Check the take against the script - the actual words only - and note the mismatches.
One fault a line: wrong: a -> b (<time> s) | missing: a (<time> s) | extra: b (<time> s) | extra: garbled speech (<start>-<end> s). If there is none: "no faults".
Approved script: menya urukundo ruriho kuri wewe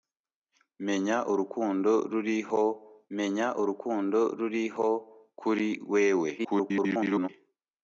extra: menya urukundo ruriho (3.2 s)
extra: garbled speech (6.4-7.3 s)